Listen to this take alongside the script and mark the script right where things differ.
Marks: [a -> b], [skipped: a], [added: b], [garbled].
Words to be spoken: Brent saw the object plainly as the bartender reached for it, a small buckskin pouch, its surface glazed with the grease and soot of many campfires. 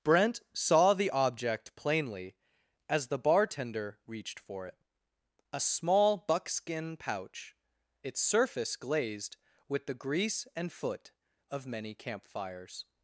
Brent saw the object plainly as the bartender reached for it, a small buckskin pouch, its surface glazed with the grease and [soot -> foot] of many campfires.